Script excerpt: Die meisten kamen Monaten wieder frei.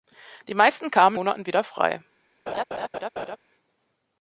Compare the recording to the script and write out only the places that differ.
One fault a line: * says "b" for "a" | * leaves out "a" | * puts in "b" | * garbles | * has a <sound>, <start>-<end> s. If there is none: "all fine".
* has a laugh, 2.5-3.4 s